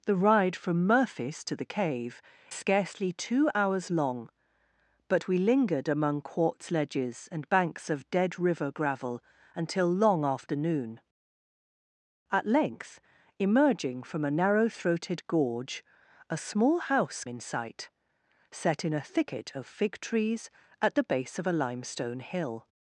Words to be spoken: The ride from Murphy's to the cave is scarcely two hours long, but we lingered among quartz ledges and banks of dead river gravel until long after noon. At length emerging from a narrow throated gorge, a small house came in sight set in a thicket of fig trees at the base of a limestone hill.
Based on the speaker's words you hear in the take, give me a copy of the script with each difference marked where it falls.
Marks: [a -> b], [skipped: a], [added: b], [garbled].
The ride from Murphy's to the cave [skipped: is] scarcely two hours long, but we lingered among quartz ledges and banks of dead river gravel until long after noon. At length emerging from a narrow throated gorge, a small house [skipped: came] in sight set in a thicket of fig trees at the base of a limestone hill.